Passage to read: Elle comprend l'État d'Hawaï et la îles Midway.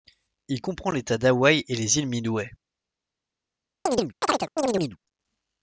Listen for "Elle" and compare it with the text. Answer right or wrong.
wrong